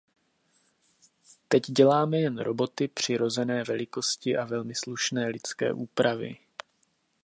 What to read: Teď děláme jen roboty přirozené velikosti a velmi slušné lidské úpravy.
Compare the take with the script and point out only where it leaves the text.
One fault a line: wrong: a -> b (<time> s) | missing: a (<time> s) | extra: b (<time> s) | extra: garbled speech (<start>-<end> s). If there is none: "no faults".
no faults